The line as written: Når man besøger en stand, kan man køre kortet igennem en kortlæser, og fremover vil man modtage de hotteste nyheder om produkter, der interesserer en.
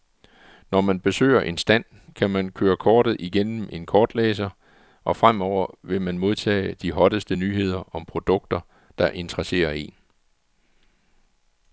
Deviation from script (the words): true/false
false